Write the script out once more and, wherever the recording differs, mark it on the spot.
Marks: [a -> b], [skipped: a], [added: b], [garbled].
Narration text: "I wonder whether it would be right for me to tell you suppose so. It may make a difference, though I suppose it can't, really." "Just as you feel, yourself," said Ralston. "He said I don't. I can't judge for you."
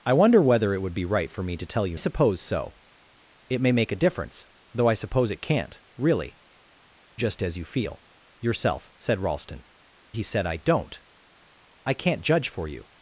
"I wonder whether it would be right for me to tell you suppose so. It may make a difference, though I suppose it can't, really." "Just as you feel, yourself," said Ralston. "He said I don't. I can't judge for you."